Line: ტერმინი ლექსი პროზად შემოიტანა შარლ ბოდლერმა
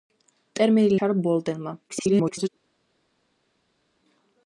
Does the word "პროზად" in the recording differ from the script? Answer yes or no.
yes